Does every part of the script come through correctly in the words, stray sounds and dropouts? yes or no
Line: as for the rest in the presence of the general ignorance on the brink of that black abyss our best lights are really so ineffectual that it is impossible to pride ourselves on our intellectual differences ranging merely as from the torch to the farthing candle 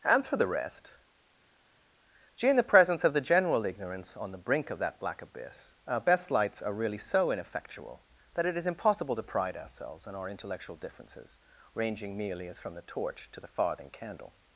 no